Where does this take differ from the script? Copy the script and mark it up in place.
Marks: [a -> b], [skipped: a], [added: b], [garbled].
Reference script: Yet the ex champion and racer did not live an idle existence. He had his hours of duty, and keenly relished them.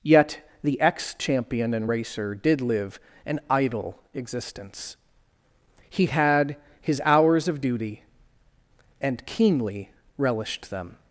Yet the ex champion and racer did [skipped: not] live an idle existence. He had his hours of duty, and keenly relished them.